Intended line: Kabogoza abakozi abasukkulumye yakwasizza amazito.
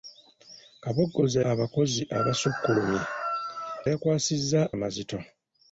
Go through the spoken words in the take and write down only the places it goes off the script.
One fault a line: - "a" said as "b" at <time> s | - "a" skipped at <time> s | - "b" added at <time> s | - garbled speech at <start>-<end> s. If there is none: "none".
none